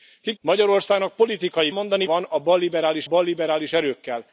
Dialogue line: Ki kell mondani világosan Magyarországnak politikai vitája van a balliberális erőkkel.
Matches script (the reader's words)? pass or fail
fail